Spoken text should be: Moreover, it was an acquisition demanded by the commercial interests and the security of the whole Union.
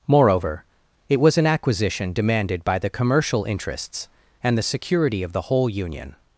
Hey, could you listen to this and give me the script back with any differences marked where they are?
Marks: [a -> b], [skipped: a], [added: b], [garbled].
Moreover, it was an acquisition demanded by the commercial interests and the security of the whole Union.